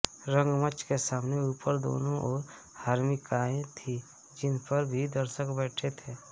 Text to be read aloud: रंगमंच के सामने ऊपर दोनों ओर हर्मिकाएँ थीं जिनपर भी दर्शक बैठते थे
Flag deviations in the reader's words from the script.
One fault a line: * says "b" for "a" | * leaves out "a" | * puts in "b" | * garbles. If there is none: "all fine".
all fine